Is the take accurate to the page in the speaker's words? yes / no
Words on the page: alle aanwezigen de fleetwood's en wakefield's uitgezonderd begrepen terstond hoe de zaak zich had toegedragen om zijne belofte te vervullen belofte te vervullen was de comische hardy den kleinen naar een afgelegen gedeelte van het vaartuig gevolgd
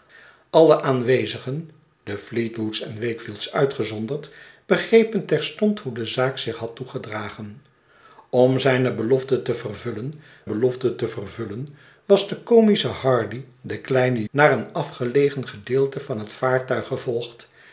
yes